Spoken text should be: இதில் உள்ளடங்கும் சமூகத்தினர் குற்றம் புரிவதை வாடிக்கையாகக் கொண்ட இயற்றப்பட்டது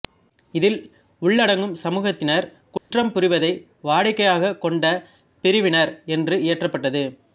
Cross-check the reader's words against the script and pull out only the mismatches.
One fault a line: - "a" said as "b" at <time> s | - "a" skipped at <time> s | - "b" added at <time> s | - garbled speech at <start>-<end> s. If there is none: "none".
- "பிரிவினர் என்று" added at 5.4 s